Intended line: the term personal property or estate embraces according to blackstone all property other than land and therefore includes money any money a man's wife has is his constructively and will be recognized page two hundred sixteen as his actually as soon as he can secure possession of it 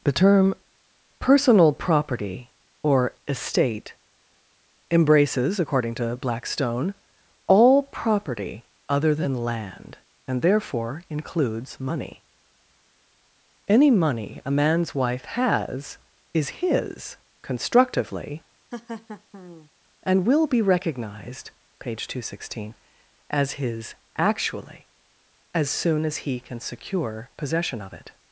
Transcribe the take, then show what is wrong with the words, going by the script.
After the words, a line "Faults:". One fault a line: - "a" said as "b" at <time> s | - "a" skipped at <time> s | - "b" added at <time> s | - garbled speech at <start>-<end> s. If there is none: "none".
the term personal property or estate embraces according to blackstone all property other than land and therefore includes money any money a man's wife has is his constructively and will be recognized page two hundred sixteen as his actually as soon as he can secure possession of it
Faults:
none